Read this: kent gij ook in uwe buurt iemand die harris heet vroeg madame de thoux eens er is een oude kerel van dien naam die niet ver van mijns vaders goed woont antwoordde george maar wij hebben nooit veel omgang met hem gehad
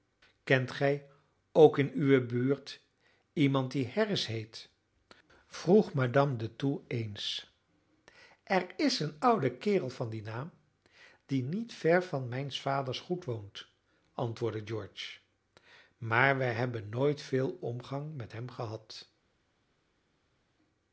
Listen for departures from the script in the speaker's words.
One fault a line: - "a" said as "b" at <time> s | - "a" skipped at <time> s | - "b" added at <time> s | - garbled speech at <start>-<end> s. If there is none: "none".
none